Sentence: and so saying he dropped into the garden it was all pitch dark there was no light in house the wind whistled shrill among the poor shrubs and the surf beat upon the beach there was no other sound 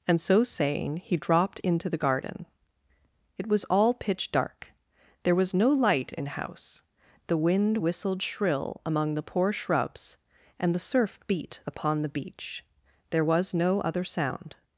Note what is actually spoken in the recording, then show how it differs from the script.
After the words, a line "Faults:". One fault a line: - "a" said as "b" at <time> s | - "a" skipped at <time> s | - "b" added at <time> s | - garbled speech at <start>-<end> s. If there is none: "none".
and so saying he dropped into the garden it was all pitch dark there was no light in house the wind whistled shrill among the poor shrubs and the surf beat upon the beach there was no other sound
Faults:
none